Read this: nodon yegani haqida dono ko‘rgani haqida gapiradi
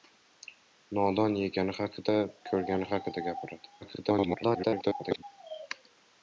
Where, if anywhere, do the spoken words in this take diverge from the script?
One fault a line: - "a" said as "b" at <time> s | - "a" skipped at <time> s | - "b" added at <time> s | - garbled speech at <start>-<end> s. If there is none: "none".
- "dono" skipped at 2.1 s
- garbled speech at 3.8-5.2 s